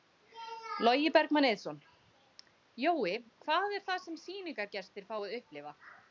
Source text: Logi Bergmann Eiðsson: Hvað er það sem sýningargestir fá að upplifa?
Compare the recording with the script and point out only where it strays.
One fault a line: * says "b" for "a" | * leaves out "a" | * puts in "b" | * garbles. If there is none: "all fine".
* puts in "Jói"